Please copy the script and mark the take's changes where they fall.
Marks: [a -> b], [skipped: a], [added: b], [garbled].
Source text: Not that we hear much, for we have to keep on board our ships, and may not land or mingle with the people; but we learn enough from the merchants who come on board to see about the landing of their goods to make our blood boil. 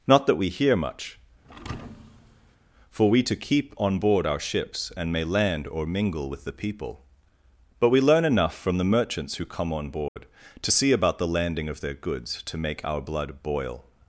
Not that we hear much, for we [skipped: have] to keep on board our ships, and may [skipped: not] land or mingle with the people; but we learn enough from the merchants who come on board to see about the landing of their goods to make our blood boil.